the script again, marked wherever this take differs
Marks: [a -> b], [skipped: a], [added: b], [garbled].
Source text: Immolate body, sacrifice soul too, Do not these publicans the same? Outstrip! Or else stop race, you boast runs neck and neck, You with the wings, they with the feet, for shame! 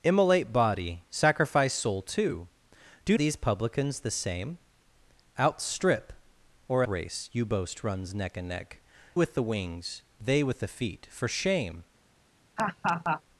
Immolate body, sacrifice soul too, Do [skipped: not] these publicans the same? Outstrip! Or [skipped: else stop] race, you boast runs neck and neck, [skipped: You] with the wings, they with the feet, for shame!